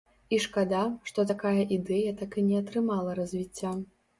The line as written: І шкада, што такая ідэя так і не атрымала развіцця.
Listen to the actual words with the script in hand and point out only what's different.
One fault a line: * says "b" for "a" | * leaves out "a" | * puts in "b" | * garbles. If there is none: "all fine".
all fine